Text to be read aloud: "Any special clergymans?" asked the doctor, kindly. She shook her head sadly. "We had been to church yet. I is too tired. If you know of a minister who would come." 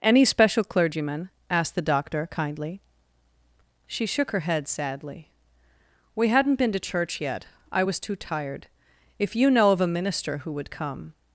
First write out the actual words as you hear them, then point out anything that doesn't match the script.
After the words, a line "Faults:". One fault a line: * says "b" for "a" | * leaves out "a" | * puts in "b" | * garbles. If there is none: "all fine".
"Any special clergyman?" asked the doctor, kindly. She shook her head sadly. "We hadn't been to church yet. I was too tired. If you know of a minister who would come."
Faults:
* says "clergyman" for "clergymans"
* says "hadn't" for "had"
* says "was" for "is"